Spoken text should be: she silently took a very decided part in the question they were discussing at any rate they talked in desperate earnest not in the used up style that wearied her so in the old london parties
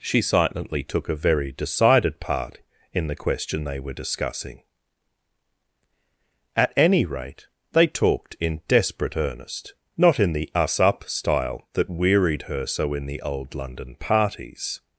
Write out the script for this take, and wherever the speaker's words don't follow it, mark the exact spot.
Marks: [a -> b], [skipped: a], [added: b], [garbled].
she silently took a very decided part in the question they were discussing at any rate they talked in desperate earnest not in the [used -> us] up style that wearied her so in the old london parties